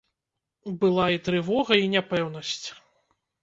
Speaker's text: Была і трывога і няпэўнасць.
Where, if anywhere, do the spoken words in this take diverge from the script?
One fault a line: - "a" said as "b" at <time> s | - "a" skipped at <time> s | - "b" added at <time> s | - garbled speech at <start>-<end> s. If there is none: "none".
none